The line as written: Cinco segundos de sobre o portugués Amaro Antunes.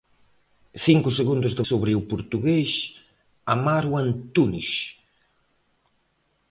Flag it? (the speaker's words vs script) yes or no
no